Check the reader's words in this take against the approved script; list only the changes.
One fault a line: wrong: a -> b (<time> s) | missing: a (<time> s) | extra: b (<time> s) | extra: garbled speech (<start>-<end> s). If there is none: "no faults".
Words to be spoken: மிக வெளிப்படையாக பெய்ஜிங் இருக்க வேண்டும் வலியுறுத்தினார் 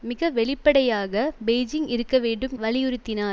no faults